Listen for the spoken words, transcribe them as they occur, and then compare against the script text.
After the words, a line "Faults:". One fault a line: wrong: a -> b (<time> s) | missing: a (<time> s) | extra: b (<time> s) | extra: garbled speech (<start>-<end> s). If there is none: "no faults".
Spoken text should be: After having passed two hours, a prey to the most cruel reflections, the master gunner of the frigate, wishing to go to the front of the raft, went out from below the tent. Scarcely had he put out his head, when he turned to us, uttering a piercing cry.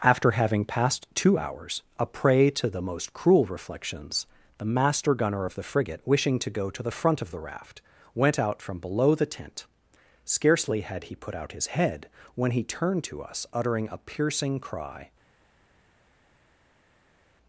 After having passed two hours, a prey to the most cruel reflections, the master gunner of the frigate, wishing to go to the front of the raft, went out from below the tent. Scarcely had he put out his head, when he turned to us, uttering a piercing cry.
Faults:
no faults